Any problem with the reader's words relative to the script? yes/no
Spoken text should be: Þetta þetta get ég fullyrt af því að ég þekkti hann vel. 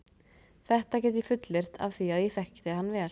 yes